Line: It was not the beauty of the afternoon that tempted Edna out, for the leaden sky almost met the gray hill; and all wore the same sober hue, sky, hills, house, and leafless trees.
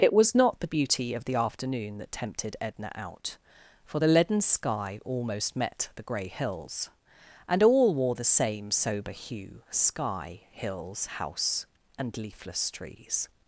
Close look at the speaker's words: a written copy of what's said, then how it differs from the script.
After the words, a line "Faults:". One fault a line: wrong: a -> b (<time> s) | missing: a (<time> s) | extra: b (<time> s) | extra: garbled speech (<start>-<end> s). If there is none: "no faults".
It was not the beauty of the afternoon that tempted Edna out, for the leaden sky almost met the gray hills; and all wore the same sober hue, sky, hills, house, and leafless trees.
Faults:
wrong: hill -> hills (6.3 s)